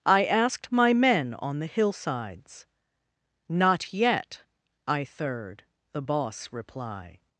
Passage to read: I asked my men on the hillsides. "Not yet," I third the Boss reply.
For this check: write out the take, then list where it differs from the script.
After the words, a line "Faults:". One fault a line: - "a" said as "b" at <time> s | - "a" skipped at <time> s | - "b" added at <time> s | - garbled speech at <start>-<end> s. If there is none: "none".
I asked my men on the hillsides. "Not yet," I third the Boss reply.
Faults:
none